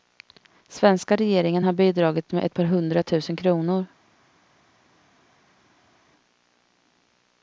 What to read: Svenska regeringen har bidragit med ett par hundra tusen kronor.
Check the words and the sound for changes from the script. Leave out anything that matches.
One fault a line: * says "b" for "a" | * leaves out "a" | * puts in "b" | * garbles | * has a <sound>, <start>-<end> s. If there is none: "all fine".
all fine